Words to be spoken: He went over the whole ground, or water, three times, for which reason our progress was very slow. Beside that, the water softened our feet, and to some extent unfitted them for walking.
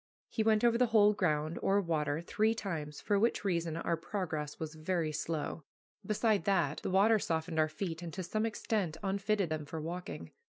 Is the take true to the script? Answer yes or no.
yes